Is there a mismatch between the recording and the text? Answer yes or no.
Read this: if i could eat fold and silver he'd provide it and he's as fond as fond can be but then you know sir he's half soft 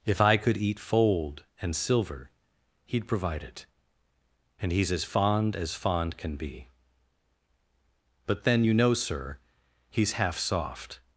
no